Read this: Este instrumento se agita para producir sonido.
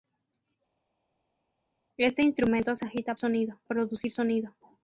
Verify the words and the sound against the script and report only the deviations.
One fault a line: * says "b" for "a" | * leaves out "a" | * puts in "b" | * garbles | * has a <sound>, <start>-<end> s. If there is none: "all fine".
* says "sonido" for "para"